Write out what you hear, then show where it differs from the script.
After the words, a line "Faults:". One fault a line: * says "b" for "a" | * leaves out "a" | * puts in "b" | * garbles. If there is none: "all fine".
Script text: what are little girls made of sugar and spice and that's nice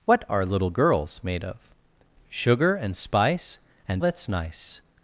what are little girls made of sugar and spice and that's nice
Faults:
all fine